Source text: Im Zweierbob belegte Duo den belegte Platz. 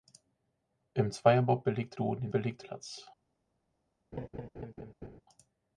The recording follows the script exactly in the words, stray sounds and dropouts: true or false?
false